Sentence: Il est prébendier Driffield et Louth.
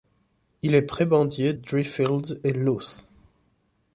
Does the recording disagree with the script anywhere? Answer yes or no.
no